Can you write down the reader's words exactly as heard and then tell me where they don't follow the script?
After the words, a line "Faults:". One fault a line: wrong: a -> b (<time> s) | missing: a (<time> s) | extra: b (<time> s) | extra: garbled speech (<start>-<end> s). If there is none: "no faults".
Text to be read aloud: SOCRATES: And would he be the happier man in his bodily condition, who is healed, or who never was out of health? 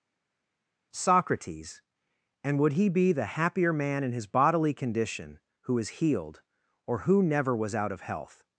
SOCRATES: And would he be the happier man in his bodily condition, who is healed, or who never was out of health?
Faults:
no faults